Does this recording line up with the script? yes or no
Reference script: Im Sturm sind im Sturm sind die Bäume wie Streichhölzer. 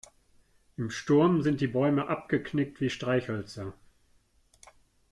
no